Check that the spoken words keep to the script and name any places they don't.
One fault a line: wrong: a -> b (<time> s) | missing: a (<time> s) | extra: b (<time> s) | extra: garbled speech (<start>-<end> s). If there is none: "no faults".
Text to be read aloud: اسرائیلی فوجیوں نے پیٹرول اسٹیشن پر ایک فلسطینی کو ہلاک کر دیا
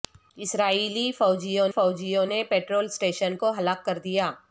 extra: فوجیوں (1.7 s)
missing: پر ایک فلسطینی (3.4 s)